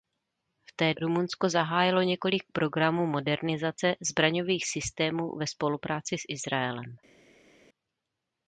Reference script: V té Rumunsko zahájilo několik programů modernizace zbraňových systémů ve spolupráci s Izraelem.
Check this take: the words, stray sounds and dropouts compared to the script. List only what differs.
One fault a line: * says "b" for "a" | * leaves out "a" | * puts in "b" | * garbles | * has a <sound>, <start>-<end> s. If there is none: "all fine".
all fine